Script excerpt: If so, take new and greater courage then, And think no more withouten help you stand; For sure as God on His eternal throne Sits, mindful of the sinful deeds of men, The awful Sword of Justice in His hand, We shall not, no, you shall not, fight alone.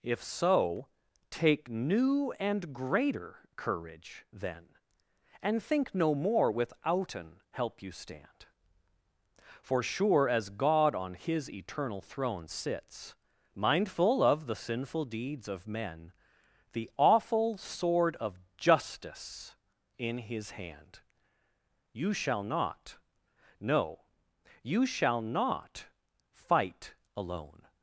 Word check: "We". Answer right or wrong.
wrong